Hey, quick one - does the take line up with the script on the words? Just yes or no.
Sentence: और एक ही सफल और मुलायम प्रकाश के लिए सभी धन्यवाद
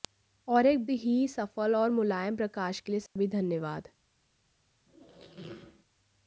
yes